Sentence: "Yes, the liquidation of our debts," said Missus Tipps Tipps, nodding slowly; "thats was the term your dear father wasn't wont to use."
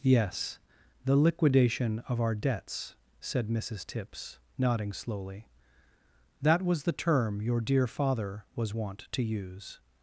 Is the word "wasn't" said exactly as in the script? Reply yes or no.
no